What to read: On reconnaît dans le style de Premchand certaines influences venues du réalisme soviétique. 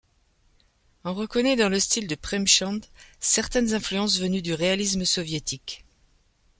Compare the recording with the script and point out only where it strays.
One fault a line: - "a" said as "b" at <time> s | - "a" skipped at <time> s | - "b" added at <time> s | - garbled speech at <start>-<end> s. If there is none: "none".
none